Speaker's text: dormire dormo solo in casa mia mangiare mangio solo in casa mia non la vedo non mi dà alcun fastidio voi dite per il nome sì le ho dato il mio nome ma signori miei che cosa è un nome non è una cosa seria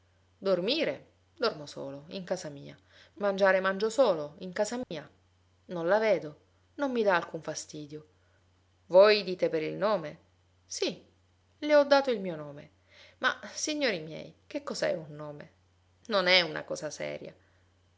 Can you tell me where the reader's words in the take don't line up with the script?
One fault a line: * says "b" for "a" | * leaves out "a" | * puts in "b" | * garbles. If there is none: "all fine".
all fine